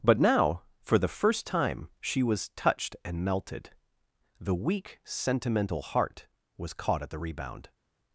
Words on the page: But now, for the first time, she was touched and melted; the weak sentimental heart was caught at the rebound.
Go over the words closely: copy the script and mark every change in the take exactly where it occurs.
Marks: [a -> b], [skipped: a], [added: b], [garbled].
But now, for the first time, she was touched and melted; the weak sentimental heart was caught at the rebound.